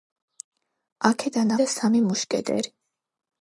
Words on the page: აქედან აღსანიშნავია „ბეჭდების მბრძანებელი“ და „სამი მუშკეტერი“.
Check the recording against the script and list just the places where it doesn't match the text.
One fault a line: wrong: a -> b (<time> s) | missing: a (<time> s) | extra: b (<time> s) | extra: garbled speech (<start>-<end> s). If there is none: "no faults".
missing: აღსანიშნავია ბეჭდების მბრძანებელი (1.5 s)